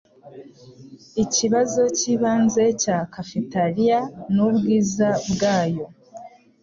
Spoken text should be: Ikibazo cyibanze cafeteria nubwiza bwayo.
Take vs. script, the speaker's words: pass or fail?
fail